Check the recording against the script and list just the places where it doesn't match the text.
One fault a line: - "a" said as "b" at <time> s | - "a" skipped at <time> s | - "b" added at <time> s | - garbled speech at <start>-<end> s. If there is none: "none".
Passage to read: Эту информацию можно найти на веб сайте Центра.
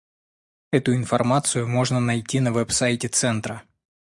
none